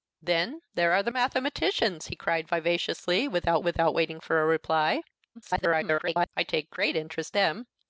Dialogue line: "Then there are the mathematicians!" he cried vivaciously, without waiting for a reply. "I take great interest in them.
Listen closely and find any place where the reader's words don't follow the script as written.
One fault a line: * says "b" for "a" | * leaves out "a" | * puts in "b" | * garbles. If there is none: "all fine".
* puts in "without"
* garbles
* leaves out "in"